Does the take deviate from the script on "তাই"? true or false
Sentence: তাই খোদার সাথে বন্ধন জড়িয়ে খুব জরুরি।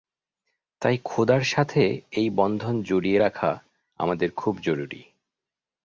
false